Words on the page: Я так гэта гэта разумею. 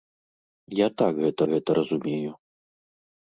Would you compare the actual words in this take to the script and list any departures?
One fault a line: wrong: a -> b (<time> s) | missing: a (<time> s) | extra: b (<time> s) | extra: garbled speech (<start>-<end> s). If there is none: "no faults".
no faults